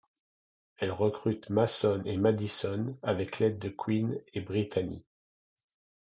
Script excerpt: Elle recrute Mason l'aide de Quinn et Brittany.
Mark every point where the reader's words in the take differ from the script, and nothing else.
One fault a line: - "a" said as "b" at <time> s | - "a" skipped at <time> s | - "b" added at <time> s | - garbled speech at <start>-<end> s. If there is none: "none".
- "et Madison avec" added at 2.0 s